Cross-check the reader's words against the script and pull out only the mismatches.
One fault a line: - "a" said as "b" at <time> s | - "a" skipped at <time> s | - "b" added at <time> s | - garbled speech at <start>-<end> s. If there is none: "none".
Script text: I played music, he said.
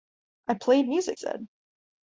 - "he" skipped at 1.2 s